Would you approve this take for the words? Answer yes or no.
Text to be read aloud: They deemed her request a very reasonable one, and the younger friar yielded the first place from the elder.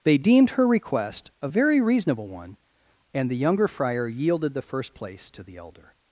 no